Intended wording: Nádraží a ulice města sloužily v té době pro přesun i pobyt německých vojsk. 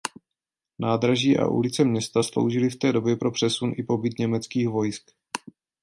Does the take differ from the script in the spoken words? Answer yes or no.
no